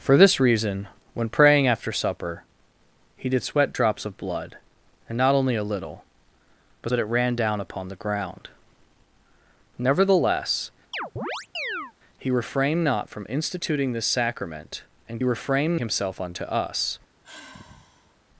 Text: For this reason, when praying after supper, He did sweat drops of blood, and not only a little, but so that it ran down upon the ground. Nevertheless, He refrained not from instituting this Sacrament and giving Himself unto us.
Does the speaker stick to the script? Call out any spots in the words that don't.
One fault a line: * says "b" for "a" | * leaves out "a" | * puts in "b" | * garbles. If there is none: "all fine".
* leaves out "so"
* says "refrained" for "giving"